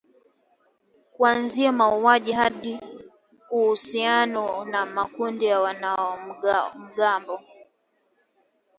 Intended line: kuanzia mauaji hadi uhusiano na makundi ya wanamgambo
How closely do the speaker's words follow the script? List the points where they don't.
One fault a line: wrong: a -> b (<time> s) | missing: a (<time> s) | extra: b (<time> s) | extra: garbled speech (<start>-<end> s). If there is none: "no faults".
no faults